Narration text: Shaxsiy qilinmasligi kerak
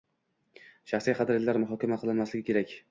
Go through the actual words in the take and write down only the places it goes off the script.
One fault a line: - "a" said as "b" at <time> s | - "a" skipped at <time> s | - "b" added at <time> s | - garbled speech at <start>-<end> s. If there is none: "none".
- "qadriyatlar muhokama" added at 1.2 s